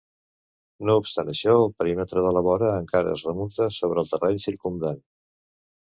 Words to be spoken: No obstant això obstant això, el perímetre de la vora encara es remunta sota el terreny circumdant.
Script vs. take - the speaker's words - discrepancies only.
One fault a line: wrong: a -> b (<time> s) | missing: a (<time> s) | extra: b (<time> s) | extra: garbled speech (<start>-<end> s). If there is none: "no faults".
missing: obstant això (1.5 s)
wrong: sota -> sobre (3.8 s)